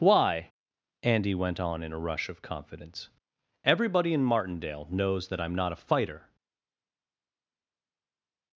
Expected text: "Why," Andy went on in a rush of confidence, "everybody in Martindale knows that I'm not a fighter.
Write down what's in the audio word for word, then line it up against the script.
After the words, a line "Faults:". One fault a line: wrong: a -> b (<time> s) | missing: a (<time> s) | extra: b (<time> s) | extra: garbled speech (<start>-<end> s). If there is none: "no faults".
"Why," Andy went on in a rush of confidence, "everybody in Martindale knows that I'm not a fighter.
Faults:
no faults